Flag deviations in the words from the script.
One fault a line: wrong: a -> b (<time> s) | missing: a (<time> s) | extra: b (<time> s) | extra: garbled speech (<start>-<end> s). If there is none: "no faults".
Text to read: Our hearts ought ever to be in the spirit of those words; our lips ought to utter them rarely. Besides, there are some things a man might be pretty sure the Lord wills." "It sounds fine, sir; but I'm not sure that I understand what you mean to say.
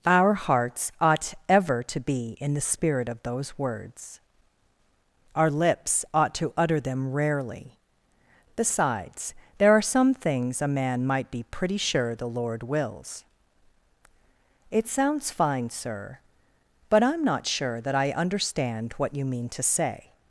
no faults